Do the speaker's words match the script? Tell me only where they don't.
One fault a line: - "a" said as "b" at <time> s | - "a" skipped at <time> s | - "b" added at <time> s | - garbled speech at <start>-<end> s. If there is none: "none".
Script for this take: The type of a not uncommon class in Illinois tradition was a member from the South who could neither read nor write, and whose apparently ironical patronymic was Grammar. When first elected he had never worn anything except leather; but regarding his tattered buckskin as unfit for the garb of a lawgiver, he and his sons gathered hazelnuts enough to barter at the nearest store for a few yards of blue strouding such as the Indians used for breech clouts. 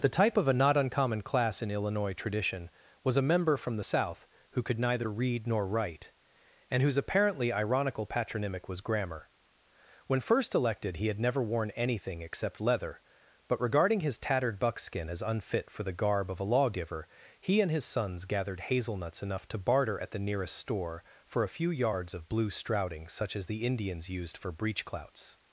none